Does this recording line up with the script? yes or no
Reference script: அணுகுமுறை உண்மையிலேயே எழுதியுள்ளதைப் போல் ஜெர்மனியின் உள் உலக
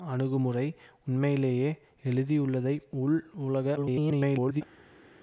no